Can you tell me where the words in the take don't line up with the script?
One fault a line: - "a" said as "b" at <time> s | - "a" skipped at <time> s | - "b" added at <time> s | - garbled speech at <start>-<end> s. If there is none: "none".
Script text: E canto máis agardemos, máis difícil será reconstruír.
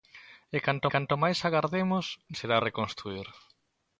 - "canto" added at 0.9 s
- "máis difícil" skipped at 2.0 s